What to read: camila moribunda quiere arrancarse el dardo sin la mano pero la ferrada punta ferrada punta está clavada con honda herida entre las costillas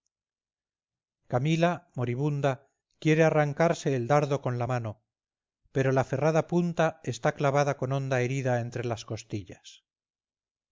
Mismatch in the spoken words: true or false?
true